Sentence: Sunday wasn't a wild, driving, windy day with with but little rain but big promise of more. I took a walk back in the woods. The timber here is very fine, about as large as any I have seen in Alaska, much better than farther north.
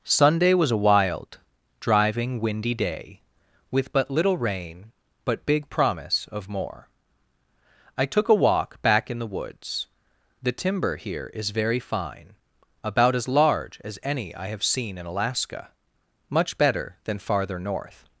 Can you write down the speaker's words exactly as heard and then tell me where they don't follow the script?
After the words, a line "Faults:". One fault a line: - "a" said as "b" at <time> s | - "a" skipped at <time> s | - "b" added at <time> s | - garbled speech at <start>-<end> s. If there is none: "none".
Sunday was a wild, driving, windy day with but little rain but big promise of more. I took a walk back in the woods. The timber here is very fine, about as large as any I have seen in Alaska, much better than farther north.
Faults:
- "wasn't" said as "was" at 0.6 s
- "with" skipped at 3.9 s